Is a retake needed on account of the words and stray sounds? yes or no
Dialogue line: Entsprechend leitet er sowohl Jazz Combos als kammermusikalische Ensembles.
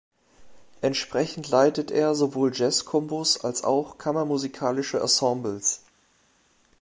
yes